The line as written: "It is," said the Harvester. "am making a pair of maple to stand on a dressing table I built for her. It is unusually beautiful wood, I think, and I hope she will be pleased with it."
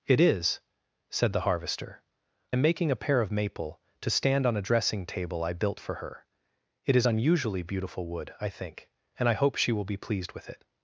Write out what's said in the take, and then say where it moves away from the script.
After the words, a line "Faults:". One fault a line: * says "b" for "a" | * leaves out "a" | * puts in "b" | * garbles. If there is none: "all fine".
"It is," said the Harvester. "am making a pair of maple to stand on a dressing table I built for her. It is unusually beautiful wood, I think, and I hope she will be pleased with it."
Faults:
all fine